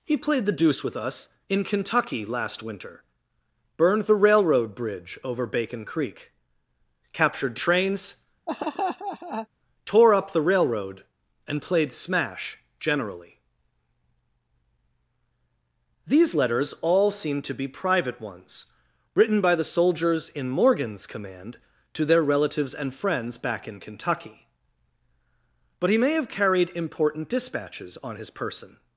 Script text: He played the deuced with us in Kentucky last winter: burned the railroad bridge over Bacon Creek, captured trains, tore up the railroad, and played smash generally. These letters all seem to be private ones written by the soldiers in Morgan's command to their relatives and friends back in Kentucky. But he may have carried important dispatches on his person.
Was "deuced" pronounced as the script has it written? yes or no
no